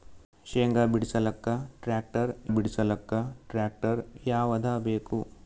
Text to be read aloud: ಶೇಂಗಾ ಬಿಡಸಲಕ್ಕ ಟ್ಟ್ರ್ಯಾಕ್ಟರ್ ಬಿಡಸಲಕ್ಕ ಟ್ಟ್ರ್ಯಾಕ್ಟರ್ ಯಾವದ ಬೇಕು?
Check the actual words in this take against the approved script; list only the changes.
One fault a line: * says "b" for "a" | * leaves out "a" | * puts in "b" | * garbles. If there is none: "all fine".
all fine